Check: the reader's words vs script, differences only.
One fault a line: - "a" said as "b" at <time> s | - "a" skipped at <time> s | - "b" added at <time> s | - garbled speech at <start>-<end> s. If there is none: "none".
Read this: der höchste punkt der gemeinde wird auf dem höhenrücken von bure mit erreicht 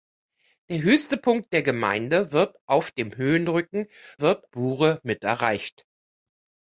- "von" said as "wird" at 4.2 s